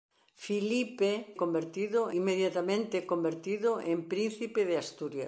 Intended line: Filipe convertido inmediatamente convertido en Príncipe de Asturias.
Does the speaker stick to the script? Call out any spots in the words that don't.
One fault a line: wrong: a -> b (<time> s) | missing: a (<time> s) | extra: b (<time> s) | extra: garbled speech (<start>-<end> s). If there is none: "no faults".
no faults